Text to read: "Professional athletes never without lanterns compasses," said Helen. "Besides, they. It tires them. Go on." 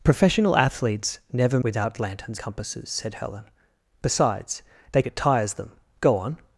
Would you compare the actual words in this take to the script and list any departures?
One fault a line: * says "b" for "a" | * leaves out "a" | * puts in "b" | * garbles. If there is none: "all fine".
all fine